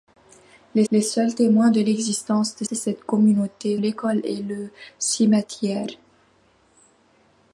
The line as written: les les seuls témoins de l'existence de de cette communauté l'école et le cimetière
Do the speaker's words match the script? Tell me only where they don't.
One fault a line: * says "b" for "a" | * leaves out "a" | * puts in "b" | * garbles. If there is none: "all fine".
all fine